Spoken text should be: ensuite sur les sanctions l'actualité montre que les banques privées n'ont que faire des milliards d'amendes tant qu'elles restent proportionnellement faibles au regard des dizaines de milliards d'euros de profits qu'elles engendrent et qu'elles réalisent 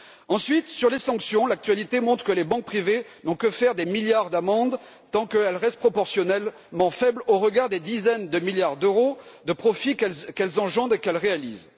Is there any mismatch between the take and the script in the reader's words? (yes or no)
no